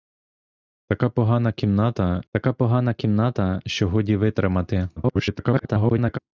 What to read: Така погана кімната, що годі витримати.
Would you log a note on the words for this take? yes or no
yes